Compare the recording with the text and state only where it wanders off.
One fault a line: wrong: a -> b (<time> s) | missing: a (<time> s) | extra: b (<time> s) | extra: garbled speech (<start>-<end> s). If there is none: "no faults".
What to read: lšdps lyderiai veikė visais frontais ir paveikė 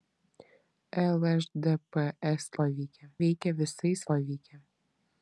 wrong: lyderiai -> paveikė (2.6 s)
missing: frontais ir (4.1 s)